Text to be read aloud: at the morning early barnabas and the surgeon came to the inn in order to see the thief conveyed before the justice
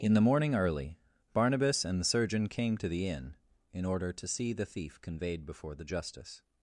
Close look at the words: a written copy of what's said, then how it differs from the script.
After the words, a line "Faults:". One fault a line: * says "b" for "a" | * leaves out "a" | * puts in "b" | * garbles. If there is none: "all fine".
in the morning early barnabas and the surgeon came to the inn in order to see the thief conveyed before the justice
Faults:
* says "in" for "at"